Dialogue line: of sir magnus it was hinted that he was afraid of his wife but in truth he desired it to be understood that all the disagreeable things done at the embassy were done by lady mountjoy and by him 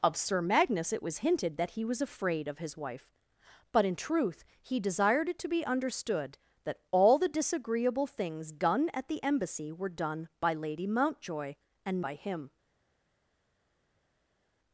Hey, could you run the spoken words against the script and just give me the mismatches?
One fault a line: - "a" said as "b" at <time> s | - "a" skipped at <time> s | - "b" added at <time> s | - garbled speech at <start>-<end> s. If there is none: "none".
none